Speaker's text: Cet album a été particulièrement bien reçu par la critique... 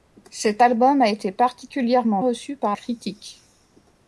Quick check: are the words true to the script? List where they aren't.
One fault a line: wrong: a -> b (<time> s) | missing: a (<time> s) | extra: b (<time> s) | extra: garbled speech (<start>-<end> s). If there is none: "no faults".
missing: bien (2.2 s)
missing: la (2.8 s)